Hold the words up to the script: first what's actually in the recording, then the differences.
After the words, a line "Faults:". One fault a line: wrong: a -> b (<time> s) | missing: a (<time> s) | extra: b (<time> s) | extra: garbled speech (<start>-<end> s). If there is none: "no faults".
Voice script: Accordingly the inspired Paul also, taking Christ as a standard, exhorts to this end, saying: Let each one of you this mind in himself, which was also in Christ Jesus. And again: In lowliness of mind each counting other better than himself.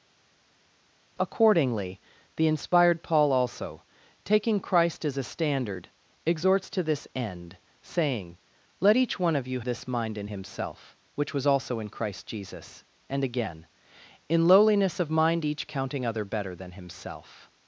Accordingly the inspired Paul also, taking Christ as a standard, exhorts to this end, saying: Let each one of you this mind in himself, which was also in Christ Jesus. And again: In lowliness of mind each counting other better than himself.
Faults:
no faults